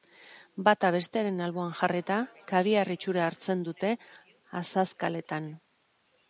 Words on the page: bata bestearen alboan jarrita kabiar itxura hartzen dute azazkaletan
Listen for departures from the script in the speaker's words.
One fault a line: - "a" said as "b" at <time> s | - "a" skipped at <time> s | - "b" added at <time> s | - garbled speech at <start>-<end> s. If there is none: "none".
none